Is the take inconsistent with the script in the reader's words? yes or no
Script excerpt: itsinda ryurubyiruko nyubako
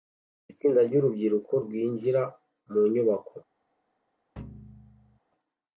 yes